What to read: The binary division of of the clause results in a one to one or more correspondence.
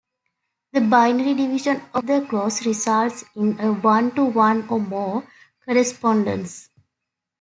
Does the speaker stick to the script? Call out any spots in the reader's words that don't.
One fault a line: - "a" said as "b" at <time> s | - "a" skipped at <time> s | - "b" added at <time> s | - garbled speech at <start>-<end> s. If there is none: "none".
- "of" skipped at 2.1 s